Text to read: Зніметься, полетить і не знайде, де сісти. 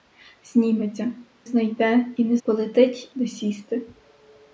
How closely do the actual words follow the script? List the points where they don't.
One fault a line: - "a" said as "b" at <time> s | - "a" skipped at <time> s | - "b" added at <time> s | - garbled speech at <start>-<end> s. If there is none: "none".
- "полетить" said as "знайде" at 1.4 s
- "знайде" said as "полетить" at 2.4 s